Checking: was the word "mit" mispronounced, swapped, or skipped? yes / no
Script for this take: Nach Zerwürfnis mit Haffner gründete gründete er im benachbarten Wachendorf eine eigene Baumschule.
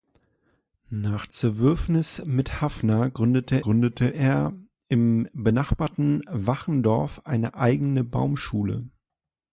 no